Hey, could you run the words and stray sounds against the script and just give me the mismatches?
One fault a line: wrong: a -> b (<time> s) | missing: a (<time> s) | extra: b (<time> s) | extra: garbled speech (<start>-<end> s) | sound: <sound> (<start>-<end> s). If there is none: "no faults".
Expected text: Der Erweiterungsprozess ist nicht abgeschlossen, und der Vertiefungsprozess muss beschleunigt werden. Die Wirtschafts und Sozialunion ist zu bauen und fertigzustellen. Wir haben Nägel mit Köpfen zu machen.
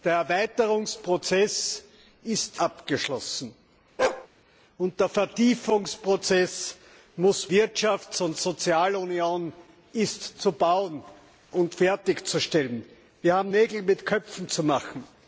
missing: nicht (2.6 s)
sound: bark (4.0-4.3 s)
missing: beschleunigt werden Die (7.5 s)